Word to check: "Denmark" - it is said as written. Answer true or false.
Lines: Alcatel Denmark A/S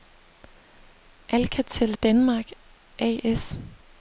true